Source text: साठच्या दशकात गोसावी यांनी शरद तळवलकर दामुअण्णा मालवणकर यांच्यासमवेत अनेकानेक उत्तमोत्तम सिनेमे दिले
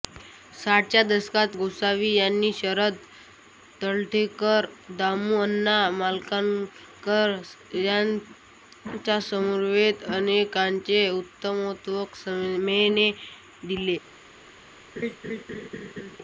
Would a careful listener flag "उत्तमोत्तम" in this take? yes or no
no